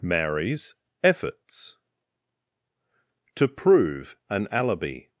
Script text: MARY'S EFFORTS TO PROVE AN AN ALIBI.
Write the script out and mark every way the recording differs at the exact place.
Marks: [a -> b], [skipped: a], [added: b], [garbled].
MARY'S EFFORTS TO PROVE AN [skipped: AN] ALIBI.